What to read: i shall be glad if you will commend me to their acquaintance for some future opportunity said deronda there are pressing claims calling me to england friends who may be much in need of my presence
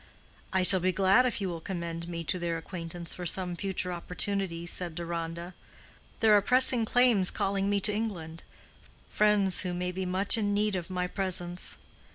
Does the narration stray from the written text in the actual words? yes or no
no